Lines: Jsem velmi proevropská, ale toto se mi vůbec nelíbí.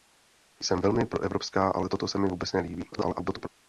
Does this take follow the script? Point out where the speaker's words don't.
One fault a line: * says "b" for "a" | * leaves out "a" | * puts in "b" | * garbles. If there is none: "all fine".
* garbles